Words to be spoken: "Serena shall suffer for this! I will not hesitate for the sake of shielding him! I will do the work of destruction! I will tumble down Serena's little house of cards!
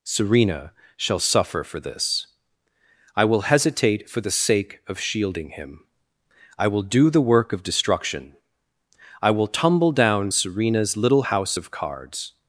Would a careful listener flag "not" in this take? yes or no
yes